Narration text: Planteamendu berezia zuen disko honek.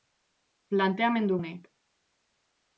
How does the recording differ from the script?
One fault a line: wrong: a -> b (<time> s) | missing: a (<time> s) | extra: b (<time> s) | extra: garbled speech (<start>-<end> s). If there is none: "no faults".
missing: berezia zuen disko (1.4 s)